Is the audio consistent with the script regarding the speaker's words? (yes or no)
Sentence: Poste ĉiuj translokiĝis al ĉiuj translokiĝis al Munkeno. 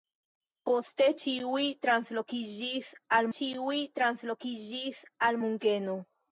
yes